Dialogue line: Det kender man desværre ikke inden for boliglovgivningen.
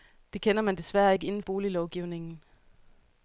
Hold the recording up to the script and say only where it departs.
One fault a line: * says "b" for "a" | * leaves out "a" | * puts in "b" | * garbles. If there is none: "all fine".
* leaves out "for"